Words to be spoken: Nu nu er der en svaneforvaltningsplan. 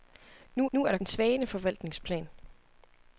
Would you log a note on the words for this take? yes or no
no